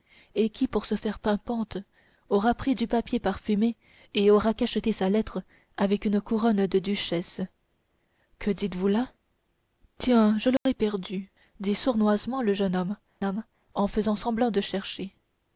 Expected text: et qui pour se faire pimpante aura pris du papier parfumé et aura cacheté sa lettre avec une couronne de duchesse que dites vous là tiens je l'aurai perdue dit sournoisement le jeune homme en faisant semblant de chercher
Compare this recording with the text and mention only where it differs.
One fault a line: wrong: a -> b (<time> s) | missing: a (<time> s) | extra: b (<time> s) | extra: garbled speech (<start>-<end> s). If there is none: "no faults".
extra: homme (13.2 s)